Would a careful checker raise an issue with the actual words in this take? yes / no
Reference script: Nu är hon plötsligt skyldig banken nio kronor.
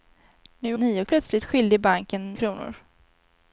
yes